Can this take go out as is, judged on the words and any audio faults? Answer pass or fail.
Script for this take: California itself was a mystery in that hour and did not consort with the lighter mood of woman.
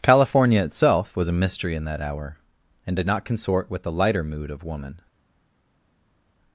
pass